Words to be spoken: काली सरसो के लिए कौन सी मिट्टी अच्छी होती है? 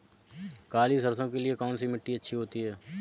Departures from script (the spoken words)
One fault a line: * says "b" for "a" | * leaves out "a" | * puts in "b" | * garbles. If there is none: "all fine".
all fine